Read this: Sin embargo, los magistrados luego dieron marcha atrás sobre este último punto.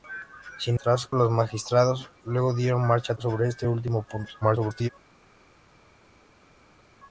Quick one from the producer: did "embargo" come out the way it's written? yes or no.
no